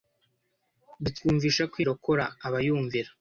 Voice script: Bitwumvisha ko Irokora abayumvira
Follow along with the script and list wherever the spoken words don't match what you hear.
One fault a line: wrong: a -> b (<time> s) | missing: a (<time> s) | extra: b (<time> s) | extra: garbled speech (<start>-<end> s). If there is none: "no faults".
no faults